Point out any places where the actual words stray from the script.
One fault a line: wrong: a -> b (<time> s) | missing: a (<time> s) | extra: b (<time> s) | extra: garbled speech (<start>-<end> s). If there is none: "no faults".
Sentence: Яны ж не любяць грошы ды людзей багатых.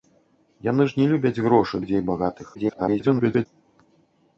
missing: ды (1.8 s)
extra: garbled speech (2.5-3.5 s)